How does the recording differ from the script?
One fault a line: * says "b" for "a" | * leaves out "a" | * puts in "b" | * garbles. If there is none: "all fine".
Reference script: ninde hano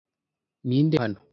all fine